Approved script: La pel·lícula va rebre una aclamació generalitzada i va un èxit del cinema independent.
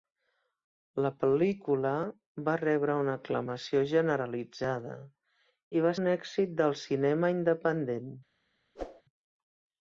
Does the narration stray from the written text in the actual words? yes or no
no